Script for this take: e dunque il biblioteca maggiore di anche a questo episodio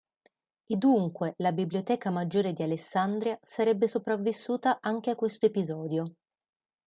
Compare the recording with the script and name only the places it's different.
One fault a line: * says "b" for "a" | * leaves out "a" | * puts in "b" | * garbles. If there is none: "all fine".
* says "la" for "il"
* puts in "alessandria sarebbe sopravvissuta"